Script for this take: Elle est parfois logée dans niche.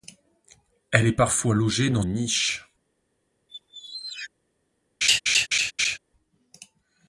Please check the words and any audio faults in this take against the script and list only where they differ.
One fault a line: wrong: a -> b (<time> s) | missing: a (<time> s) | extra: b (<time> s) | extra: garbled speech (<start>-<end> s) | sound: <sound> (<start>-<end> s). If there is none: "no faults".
sound: squeak (3.5-4.3 s)
sound: laugh (5.0-6.0 s)